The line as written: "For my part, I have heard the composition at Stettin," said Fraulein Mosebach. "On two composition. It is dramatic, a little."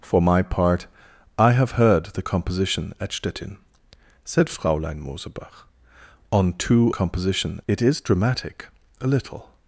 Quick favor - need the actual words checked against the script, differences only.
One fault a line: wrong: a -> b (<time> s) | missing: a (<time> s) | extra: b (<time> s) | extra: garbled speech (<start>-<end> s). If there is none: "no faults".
no faults